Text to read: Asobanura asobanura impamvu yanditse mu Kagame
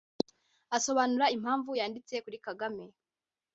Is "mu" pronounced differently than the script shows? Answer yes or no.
yes